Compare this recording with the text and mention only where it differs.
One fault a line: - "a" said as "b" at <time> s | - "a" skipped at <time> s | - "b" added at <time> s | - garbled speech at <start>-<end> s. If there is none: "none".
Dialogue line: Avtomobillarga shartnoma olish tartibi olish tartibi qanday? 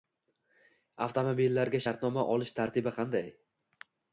- "olish tartibi" skipped at 3.0 s